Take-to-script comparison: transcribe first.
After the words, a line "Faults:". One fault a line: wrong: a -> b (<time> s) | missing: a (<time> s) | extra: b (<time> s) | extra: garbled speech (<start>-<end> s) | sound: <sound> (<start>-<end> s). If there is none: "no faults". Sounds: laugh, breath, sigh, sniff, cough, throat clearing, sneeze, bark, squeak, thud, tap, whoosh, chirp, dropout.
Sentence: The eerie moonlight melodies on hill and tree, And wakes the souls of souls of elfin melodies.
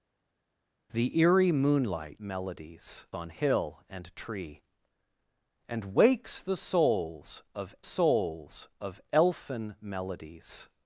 The eerie moonlight melodies on hill and tree, And wakes the souls of souls of elfin melodies.
Faults:
no faults